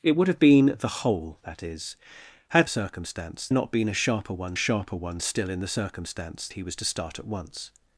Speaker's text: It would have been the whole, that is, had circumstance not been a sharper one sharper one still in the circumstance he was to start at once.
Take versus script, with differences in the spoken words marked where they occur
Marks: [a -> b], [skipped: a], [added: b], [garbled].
It would have been the whole, that is, had circumstance not been a sharper one sharper one still in the circumstance he was to start at once.